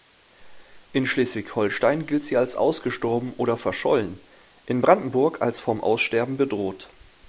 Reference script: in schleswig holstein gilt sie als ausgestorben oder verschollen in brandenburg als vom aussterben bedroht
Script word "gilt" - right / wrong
right